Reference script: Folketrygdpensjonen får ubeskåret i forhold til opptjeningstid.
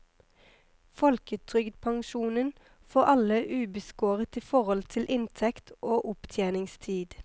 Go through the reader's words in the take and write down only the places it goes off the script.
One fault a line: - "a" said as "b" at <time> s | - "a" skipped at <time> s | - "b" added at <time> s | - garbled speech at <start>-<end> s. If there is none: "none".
- "alle" added at 3.0 s
- "inntekt og" added at 5.1 s